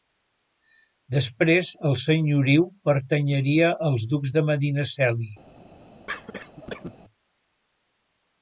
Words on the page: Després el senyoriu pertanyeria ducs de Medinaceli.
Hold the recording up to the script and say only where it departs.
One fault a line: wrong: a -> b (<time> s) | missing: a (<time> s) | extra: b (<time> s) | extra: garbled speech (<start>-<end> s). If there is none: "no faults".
extra: als (3.9 s)